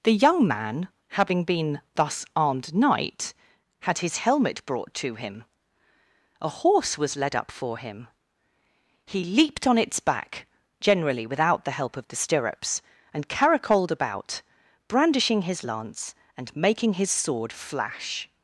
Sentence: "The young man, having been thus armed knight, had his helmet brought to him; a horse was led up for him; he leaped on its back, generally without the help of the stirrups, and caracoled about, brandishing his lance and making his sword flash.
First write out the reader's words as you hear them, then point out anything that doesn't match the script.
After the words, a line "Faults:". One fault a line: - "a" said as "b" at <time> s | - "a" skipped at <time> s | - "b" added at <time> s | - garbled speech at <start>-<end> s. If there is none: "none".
"The young man, having been thus armed knight, had his helmet brought to him; a horse was led up for him; he leaped on its back, generally without the help of the stirrups, and caracoled about, brandishing his lance and making his sword flash.
Faults:
none